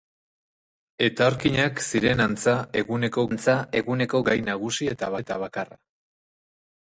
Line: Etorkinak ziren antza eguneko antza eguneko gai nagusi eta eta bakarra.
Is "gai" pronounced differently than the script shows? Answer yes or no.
no